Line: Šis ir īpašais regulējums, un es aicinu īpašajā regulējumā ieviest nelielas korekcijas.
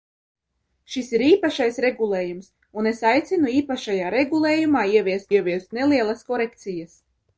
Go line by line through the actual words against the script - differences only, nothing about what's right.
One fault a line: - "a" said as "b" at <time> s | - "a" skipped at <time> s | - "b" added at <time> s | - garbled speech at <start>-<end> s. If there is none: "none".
- "ieviest" added at 5.3 s